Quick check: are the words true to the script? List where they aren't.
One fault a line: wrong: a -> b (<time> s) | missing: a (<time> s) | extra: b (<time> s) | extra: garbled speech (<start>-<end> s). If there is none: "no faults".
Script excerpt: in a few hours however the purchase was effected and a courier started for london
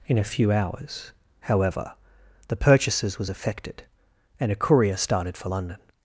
wrong: purchase -> purchases (2.5 s)